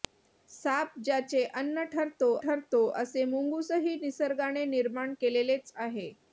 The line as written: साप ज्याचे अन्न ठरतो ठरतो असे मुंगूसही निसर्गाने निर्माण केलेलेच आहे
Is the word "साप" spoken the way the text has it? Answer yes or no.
yes